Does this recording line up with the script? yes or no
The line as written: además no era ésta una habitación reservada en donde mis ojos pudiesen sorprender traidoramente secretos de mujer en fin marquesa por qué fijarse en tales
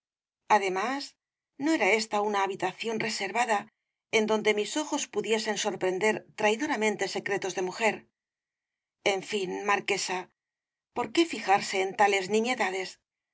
yes